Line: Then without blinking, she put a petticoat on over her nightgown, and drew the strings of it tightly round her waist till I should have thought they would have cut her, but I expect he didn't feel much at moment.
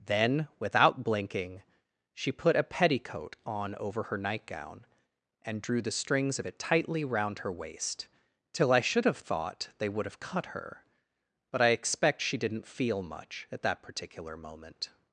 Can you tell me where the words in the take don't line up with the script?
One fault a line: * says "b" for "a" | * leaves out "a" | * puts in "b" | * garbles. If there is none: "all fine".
* says "she" for "he"
* puts in "that particular"